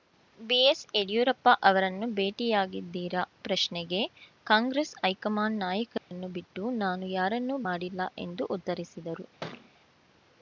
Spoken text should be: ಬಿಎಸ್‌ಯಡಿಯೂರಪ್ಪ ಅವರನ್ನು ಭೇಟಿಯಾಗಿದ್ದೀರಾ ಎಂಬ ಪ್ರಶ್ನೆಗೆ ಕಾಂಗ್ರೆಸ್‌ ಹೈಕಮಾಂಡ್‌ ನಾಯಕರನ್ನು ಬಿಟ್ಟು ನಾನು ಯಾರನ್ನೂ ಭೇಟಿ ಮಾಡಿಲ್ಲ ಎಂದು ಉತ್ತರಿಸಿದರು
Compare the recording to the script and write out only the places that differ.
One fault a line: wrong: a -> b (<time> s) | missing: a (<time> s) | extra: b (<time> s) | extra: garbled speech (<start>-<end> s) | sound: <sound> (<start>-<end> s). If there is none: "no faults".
missing: ಎಂಬ (3.2 s)
sound: dropout (6.0-6.1 s)
missing: ಭೇಟಿ (7.6 s)
sound: thud (9.4-9.7 s)